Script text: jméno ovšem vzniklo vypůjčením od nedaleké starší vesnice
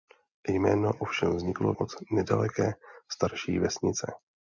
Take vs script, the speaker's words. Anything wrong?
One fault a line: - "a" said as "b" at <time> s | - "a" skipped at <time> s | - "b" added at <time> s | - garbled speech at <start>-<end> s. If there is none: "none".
- "vypůjčením" skipped at 1.7 s